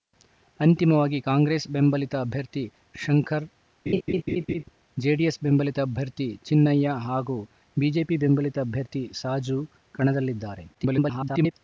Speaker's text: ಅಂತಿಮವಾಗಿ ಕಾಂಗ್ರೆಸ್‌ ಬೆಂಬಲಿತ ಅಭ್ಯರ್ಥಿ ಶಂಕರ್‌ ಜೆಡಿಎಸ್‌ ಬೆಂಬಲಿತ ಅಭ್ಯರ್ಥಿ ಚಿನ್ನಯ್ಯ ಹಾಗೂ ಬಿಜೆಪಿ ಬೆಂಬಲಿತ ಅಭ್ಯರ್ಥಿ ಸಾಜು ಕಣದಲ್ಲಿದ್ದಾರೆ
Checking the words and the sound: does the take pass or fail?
fail